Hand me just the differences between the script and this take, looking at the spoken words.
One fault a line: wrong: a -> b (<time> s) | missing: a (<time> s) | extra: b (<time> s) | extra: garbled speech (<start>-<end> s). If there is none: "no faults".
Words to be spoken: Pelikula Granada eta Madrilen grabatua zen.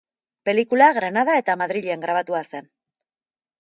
no faults